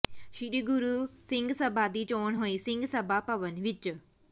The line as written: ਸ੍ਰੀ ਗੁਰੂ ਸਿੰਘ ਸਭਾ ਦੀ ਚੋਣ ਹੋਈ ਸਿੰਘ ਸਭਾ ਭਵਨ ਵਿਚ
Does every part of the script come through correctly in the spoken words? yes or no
yes